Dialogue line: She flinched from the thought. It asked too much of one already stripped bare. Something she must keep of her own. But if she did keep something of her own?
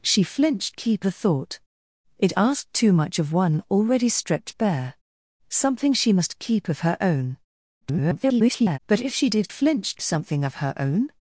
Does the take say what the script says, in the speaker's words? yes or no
no